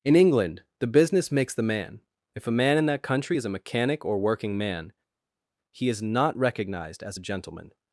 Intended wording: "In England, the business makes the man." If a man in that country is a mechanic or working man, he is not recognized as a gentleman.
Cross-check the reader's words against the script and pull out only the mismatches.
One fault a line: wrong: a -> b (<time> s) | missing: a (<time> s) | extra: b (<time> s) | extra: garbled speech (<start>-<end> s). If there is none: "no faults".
no faults